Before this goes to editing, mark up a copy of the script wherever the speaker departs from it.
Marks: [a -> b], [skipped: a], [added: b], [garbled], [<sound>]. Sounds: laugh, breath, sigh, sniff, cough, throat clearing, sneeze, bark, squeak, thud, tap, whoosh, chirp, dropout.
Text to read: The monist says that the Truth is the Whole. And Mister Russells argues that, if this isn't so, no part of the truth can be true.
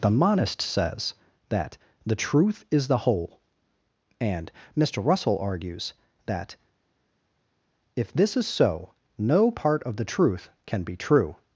The monist says that the Truth is the Whole. And Mister [Russells -> Russell] argues that, if this [isn't -> is] so, no part of the truth can be true.